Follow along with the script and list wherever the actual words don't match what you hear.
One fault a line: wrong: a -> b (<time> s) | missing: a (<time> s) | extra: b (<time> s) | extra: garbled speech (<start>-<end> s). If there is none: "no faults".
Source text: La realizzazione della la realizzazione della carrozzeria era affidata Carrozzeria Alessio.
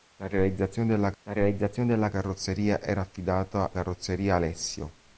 no faults